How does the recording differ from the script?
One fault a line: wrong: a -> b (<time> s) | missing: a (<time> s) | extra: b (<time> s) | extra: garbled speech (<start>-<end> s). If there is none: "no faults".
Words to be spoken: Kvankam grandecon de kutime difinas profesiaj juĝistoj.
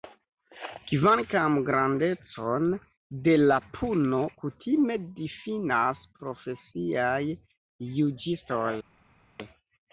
extra: la puno (3.4 s)